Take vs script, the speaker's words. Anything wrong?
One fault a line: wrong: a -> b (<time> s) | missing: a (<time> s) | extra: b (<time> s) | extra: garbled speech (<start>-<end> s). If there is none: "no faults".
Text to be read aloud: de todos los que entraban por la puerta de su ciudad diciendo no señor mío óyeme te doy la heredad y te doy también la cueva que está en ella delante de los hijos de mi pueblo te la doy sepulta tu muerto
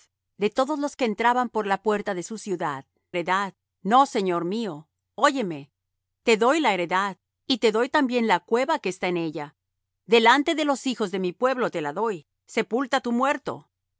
wrong: diciendo -> heredad (3.1 s)